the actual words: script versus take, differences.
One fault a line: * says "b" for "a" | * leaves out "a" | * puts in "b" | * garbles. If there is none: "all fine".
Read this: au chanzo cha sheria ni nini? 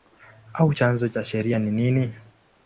all fine